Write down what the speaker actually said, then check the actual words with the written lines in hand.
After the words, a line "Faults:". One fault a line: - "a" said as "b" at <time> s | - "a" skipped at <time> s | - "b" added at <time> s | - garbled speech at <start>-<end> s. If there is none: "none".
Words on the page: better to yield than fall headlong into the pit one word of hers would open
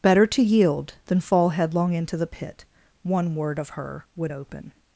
better to yield than fall headlong into the pit one word of her would open
Faults:
- "hers" said as "her" at 3.7 s